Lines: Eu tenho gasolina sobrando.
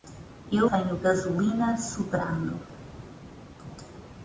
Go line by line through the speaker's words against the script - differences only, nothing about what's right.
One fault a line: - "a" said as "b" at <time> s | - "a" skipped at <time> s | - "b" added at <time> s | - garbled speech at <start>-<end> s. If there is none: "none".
none